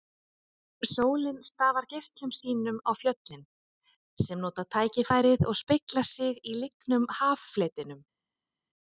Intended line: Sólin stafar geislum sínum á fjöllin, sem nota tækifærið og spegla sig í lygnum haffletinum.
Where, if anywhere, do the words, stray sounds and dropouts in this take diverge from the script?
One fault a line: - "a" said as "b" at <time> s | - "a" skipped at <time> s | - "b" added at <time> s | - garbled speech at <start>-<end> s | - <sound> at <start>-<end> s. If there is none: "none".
none